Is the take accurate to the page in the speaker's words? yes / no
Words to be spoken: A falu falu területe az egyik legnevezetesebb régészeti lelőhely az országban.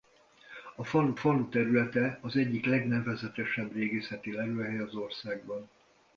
yes